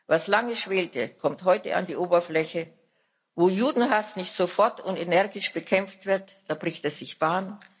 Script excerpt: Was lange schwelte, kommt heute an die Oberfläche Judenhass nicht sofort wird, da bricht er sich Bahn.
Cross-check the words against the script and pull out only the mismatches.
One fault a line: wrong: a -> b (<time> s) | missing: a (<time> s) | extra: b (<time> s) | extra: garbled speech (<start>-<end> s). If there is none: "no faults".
extra: Wo (3.3 s)
extra: und energisch bekämpft (4.8 s)